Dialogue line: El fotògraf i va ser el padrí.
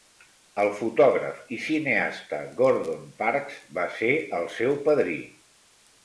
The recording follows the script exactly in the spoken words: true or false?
false